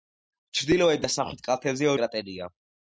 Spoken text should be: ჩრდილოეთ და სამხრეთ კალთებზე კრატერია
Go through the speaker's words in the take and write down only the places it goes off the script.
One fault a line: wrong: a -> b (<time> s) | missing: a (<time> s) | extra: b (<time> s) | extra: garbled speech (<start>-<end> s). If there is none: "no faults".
no faults